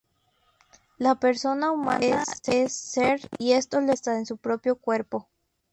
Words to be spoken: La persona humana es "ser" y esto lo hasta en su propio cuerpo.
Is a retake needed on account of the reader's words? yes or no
no